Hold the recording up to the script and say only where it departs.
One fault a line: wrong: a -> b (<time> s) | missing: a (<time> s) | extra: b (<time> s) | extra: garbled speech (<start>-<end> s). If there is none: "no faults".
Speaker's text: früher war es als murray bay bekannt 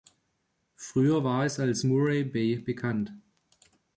no faults